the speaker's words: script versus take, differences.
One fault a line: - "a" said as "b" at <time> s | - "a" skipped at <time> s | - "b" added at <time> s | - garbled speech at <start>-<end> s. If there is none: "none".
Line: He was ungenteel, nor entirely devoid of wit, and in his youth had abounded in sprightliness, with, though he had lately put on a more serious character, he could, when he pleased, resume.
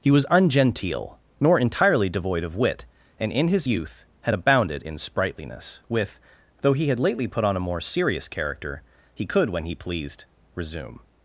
none